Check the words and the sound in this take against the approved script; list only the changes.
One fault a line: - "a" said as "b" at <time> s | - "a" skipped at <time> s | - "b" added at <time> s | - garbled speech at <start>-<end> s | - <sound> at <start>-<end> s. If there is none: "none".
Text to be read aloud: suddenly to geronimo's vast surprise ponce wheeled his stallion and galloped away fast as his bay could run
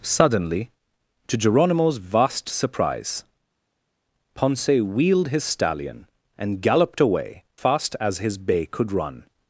none